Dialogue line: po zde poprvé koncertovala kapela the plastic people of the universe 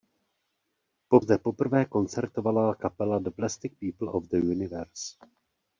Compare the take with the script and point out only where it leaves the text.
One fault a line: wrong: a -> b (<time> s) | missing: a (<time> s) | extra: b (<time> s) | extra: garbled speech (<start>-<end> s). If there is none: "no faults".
no faults